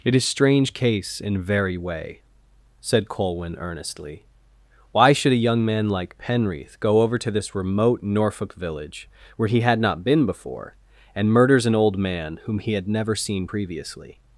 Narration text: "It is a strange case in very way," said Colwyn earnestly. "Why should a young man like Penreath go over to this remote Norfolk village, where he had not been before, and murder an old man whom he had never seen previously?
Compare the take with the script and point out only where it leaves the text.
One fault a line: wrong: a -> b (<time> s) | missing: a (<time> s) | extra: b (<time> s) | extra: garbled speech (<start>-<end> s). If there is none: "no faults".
missing: a (0.2 s)
wrong: murder -> murders (11.3 s)